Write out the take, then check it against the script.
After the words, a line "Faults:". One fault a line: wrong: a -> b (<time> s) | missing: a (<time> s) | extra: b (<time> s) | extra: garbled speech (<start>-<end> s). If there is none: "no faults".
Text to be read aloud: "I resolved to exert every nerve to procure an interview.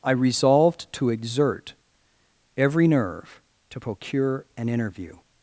"I resolved to exert every nerve to procure an interview.
Faults:
no faults